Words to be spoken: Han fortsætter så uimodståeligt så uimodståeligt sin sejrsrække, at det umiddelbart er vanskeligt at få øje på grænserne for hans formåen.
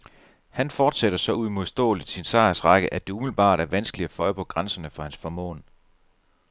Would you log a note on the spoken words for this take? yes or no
yes